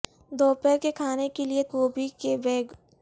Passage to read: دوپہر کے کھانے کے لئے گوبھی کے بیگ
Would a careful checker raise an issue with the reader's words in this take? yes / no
no